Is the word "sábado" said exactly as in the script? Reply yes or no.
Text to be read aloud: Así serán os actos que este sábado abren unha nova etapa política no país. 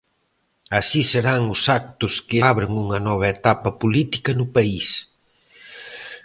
no